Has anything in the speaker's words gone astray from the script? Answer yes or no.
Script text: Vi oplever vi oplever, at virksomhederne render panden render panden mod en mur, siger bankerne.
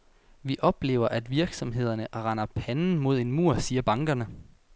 yes